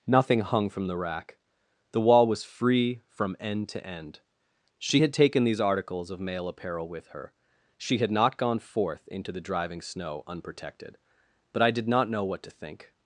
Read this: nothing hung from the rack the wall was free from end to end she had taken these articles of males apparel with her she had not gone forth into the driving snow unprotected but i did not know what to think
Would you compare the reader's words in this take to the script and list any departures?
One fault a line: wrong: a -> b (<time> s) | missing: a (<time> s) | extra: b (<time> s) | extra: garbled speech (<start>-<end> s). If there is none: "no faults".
wrong: males -> male (6.2 s)